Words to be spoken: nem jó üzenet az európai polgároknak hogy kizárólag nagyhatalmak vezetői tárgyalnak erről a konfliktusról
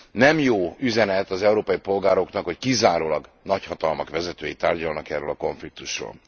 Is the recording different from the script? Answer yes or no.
no